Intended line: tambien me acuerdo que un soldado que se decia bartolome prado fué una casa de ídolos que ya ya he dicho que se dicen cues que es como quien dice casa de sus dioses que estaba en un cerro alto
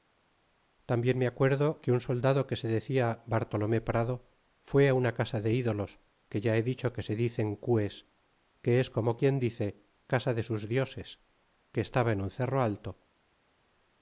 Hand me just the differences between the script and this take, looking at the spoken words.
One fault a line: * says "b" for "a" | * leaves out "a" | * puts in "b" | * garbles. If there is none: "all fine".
* leaves out "ya"